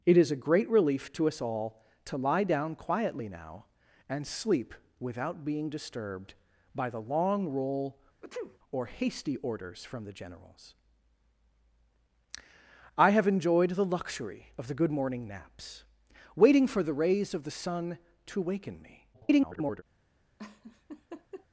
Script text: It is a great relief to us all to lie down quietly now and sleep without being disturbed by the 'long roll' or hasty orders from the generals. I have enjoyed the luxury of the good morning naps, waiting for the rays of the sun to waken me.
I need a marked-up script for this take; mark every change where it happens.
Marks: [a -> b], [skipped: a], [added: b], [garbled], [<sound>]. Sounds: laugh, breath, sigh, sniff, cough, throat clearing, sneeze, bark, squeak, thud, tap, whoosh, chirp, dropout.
It is a great relief to us all to lie down quietly now and sleep without being disturbed by the 'long roll' [sneeze] or hasty orders from the generals. I have enjoyed the luxury of the good morning naps, waiting for the rays of the sun to waken me. [garbled] [laugh]